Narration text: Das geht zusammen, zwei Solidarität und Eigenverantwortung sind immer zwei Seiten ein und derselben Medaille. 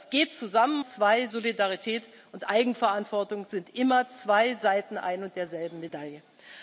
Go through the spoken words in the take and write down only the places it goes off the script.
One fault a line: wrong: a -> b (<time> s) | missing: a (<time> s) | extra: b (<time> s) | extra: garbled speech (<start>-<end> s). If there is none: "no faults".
no faults